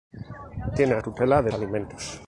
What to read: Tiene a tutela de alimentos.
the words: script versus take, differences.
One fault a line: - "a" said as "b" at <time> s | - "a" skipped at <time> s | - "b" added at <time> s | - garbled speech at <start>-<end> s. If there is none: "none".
none